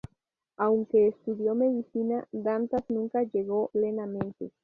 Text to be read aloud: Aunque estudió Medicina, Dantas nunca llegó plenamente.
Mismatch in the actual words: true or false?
false